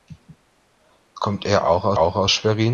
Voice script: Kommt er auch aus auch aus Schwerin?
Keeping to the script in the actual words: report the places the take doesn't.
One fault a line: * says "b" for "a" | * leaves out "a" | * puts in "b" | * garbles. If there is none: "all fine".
all fine